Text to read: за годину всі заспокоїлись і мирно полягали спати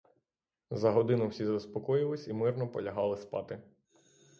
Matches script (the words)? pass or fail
pass